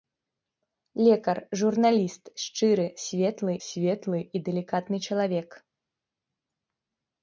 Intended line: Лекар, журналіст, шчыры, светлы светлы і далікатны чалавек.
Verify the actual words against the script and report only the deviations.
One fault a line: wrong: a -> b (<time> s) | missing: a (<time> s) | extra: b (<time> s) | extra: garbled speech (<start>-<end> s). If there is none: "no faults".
no faults